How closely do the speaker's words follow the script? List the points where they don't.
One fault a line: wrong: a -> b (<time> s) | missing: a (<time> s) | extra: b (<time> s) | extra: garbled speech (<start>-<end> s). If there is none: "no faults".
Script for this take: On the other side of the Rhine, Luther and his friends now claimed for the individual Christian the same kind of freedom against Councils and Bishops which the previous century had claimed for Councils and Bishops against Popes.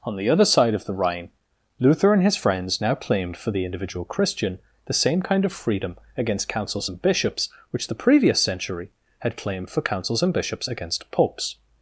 no faults